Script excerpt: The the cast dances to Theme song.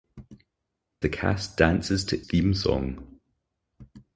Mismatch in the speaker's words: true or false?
false